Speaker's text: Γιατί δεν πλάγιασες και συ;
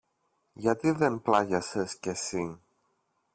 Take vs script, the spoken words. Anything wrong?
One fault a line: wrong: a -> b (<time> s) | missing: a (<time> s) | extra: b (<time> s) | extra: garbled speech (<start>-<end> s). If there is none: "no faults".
no faults